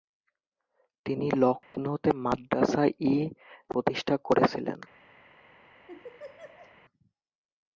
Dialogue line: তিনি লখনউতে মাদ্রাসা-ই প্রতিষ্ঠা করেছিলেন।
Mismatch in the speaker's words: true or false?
false